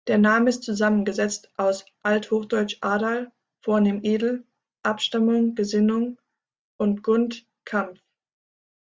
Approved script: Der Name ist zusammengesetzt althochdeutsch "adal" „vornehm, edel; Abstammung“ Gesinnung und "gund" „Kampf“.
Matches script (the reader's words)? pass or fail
fail